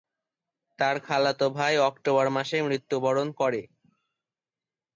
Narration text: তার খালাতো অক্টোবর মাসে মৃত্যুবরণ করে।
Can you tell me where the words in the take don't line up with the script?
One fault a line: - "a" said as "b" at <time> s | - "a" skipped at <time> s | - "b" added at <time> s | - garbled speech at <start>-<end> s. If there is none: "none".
- "ভাই" added at 1.6 s